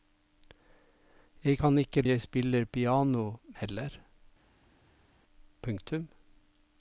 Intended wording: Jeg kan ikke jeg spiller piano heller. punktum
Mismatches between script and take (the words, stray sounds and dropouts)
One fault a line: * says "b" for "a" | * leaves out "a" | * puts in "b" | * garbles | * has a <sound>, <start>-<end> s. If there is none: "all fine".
all fine